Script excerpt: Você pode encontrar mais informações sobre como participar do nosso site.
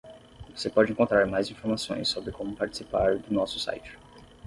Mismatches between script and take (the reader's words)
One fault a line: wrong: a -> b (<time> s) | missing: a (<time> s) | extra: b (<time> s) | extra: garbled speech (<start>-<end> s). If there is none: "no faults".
no faults